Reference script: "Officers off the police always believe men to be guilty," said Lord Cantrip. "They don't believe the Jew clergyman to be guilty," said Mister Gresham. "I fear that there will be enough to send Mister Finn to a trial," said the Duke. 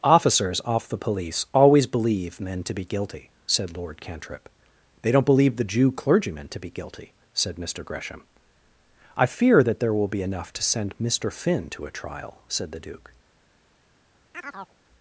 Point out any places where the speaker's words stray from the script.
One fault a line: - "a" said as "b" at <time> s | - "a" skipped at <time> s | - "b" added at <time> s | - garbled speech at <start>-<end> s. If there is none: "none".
none